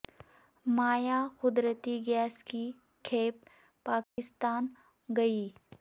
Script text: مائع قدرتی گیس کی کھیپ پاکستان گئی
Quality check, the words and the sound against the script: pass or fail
fail